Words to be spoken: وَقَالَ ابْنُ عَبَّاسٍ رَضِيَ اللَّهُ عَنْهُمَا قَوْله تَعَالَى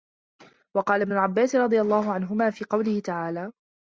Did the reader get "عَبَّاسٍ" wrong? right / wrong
right